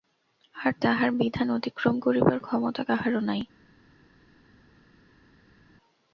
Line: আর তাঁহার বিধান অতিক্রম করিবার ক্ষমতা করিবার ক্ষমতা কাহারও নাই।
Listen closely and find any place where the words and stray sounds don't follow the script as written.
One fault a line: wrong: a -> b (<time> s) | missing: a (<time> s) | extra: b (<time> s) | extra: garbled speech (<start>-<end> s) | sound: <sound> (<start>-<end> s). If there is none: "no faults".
missing: করিবার ক্ষমতা (2.8 s)